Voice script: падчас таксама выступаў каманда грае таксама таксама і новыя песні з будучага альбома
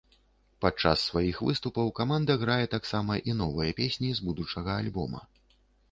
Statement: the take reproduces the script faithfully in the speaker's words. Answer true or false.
false